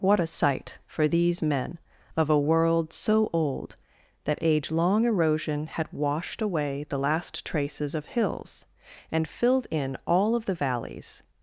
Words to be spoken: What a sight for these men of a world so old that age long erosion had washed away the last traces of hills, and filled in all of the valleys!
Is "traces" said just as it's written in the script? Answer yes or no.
yes